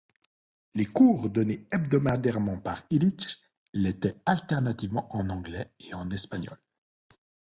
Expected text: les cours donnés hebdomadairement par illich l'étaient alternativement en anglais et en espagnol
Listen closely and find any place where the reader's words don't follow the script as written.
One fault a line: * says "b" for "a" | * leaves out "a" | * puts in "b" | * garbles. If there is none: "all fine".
all fine